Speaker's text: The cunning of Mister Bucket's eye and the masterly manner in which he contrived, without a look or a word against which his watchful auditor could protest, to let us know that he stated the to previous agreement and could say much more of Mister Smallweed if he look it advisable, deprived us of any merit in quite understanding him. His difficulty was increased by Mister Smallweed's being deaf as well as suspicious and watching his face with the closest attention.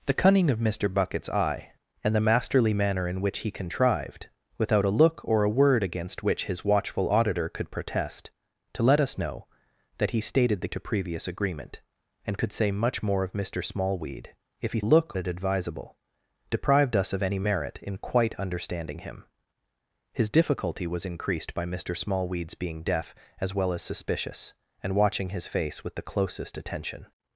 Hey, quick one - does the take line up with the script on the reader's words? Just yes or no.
yes